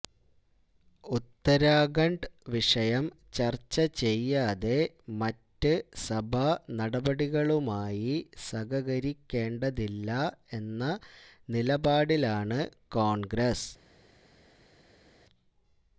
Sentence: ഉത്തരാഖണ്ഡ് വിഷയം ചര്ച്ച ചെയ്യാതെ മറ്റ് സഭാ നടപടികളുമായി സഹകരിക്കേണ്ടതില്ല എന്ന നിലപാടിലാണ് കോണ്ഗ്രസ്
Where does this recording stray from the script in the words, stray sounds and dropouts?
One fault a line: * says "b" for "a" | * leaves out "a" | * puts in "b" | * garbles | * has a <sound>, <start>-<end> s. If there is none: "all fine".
all fine